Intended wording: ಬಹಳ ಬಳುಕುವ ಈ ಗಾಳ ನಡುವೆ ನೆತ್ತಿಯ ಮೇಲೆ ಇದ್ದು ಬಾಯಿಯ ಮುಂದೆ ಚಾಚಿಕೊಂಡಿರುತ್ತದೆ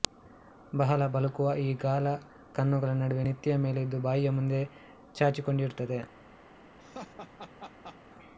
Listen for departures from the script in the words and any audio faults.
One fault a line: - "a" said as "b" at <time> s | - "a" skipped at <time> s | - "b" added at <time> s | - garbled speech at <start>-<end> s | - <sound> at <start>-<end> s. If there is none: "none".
- "ಕಣ್ಣುಗಳ" added at 2.5 s
- laugh at 6.8-8.0 s